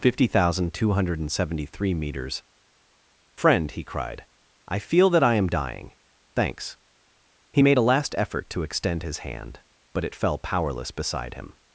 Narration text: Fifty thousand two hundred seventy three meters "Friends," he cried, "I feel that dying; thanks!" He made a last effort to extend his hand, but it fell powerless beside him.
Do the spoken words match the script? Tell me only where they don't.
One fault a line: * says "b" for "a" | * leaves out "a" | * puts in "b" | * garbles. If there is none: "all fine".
* says "Friend" for "Friends"
* puts in "I am"